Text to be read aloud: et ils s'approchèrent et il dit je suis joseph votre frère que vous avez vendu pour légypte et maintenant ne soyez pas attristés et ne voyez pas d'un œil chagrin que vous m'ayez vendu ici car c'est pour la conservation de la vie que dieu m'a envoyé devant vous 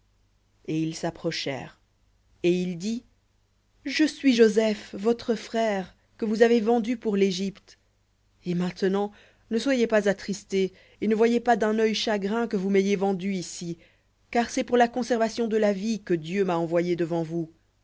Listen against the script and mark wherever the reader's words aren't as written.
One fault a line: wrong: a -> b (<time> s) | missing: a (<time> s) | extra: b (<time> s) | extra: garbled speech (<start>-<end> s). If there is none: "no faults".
no faults